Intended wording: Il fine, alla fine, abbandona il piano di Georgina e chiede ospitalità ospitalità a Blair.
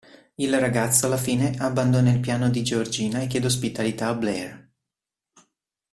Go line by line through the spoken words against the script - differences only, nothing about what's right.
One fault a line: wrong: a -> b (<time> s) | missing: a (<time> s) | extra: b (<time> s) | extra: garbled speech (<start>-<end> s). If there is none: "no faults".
wrong: fine -> ragazzo (0.6 s)
missing: ospitalità (4.1 s)